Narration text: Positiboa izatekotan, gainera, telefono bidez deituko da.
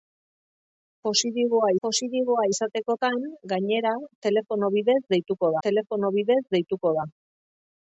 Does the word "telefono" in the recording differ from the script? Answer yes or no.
no